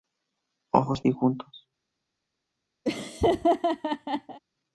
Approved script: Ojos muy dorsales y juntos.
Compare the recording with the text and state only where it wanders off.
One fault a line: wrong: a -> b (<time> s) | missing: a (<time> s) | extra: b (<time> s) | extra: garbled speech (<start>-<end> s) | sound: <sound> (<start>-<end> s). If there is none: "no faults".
missing: muy dorsales (1.1 s)
sound: laugh (2.8-4.4 s)